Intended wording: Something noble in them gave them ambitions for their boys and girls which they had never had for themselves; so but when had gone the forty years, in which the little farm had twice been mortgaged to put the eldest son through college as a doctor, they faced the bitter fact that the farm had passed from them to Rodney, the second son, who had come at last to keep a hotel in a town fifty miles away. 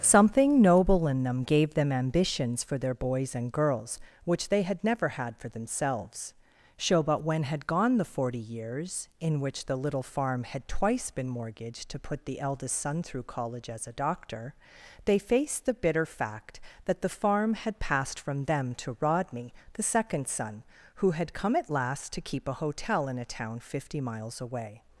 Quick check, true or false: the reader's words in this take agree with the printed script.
true